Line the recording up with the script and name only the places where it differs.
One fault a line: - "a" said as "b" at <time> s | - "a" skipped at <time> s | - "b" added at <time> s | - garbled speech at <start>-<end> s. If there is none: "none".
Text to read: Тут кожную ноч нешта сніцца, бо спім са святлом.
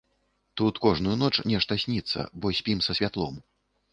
none